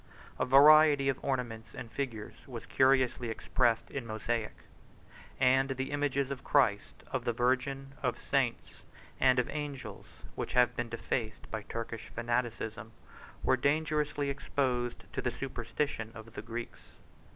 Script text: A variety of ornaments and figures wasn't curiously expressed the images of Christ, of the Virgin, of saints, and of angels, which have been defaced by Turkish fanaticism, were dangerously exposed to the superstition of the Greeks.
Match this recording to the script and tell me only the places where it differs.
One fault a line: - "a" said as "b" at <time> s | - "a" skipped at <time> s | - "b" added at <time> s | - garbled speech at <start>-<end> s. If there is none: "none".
- "wasn't" said as "was" at 2.5 s
- "in mosaic and" added at 3.9 s